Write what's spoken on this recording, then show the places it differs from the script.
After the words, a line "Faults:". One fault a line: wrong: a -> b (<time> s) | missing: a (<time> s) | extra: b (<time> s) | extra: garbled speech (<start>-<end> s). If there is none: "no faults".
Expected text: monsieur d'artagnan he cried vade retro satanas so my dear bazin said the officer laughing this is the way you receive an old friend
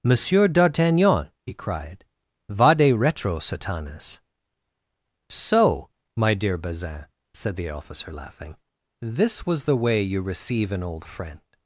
monsieur d'artagnan he cried vade retro satanas so my dear bazin said the officer laughing this was the way you receive an old friend
Faults:
wrong: is -> was (9.4 s)